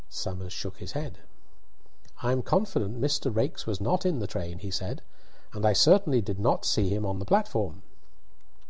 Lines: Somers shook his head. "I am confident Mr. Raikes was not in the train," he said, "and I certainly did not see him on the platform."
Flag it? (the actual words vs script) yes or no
no